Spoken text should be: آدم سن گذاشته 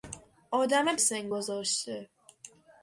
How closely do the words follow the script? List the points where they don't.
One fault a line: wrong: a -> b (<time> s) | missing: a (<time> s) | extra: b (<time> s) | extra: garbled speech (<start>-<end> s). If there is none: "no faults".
no faults